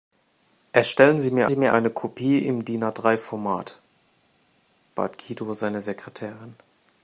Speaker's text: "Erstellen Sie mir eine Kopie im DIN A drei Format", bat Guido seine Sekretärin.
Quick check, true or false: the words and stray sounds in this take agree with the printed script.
false